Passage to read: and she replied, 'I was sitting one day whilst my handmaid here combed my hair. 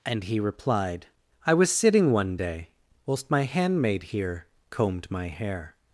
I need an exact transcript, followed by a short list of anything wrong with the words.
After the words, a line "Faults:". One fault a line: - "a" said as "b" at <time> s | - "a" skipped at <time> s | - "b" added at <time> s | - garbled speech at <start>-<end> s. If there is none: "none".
and he replied, 'I was sitting one day whilst my handmaid here combed my hair.
Faults:
- "she" said as "he" at 0.2 s